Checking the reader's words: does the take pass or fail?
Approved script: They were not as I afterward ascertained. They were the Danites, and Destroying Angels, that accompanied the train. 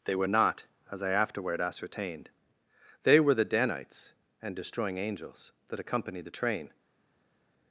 pass